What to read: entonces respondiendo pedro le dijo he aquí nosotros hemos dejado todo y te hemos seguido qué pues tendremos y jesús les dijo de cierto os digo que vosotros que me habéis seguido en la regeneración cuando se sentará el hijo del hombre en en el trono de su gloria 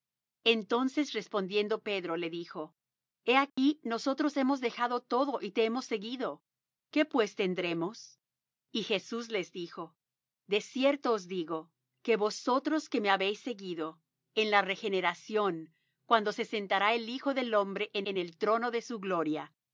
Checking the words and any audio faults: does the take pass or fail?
fail